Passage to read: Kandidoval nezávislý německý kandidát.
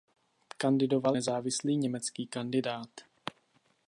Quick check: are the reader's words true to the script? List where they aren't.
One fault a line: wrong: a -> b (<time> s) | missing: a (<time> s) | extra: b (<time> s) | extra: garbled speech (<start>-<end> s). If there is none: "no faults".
no faults